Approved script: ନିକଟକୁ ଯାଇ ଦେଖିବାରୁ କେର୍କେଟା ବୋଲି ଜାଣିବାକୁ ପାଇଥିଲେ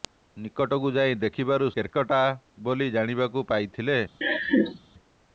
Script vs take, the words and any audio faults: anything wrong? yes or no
yes